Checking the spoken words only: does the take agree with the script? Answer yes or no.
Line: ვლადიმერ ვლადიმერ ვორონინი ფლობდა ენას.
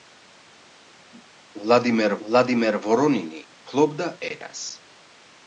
yes